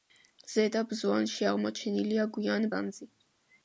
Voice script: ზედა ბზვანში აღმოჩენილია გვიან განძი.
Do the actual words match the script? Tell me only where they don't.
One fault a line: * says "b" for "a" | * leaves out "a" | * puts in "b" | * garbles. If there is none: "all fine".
all fine